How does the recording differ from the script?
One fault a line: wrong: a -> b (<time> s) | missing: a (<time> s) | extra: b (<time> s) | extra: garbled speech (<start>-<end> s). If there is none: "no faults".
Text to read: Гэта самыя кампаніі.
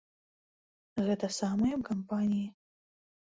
no faults